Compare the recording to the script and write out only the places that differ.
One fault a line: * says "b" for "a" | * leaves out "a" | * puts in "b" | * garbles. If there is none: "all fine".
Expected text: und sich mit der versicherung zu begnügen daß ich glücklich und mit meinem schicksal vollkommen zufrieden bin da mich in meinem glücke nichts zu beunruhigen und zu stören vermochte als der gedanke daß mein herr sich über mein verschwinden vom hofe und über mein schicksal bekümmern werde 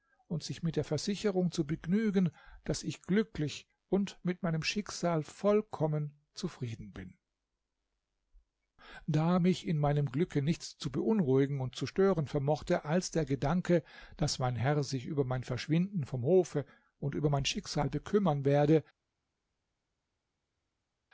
all fine